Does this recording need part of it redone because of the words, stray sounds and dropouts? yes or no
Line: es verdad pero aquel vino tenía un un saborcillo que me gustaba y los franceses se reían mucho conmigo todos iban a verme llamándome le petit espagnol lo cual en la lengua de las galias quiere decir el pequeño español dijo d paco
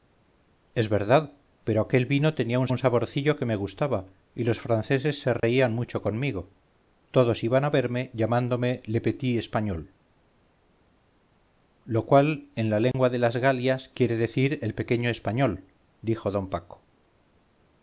yes